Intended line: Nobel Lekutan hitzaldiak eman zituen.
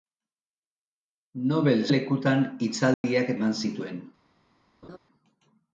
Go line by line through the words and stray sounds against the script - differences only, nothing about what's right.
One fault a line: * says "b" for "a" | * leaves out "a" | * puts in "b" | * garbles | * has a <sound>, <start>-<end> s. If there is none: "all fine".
* has a dropout, 2.9-3.0 s
* has a laugh, 4.8-5.0 s